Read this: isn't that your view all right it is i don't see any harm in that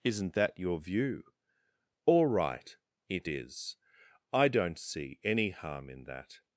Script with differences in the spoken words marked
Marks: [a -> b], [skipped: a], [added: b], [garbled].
isn't that your view all right it is i don't see any harm in that